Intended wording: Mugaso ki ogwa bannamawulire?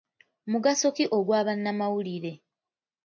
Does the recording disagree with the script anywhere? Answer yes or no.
no